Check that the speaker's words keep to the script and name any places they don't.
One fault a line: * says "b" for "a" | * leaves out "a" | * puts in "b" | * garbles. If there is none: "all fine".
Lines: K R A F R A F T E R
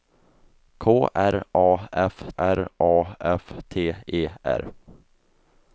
all fine